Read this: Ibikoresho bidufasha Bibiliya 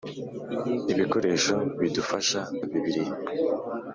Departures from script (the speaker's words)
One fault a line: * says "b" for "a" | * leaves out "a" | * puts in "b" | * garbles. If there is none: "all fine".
all fine